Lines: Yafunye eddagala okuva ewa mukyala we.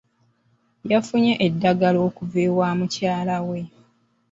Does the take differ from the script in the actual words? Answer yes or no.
no